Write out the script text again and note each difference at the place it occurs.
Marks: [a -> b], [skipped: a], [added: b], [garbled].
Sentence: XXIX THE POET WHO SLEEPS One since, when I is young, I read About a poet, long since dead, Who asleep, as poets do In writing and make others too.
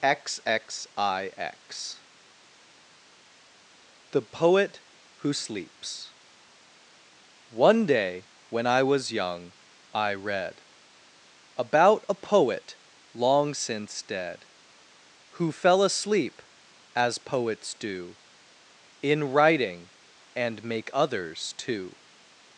XXIX THE POET WHO SLEEPS One [since, -> day] when I [is -> was] young, I read About a poet, long since dead, Who [added: fell] asleep, as poets do In writing and make others too.